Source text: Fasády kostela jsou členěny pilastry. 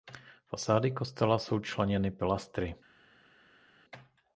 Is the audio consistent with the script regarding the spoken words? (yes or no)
yes